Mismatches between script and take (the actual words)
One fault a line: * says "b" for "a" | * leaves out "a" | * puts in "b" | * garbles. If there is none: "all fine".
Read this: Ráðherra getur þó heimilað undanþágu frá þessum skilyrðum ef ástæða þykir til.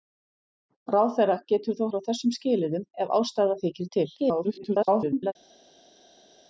* leaves out "heimilað undanþágu"
* garbles